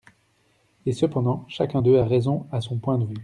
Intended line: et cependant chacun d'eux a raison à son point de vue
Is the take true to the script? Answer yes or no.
yes